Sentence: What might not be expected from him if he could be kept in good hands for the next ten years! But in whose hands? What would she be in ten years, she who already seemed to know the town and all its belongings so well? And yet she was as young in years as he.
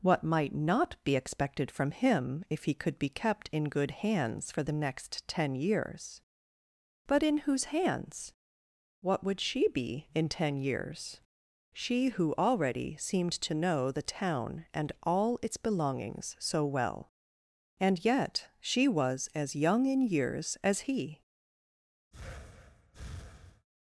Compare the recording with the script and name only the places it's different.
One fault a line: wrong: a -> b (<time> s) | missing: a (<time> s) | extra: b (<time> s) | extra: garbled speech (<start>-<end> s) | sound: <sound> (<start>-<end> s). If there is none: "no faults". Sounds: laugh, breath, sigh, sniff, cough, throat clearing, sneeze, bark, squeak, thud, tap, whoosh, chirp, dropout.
sound: breath (22.1-23.7 s)